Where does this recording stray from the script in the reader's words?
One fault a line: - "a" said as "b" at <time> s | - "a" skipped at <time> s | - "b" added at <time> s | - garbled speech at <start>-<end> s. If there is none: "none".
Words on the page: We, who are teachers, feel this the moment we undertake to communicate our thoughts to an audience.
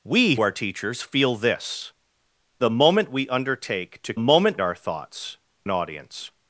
- "who" skipped at 0.3 s
- "communicate" said as "moment" at 4.2 s
- "to" skipped at 5.4 s